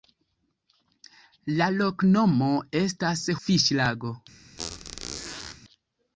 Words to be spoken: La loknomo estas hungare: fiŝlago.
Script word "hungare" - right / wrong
wrong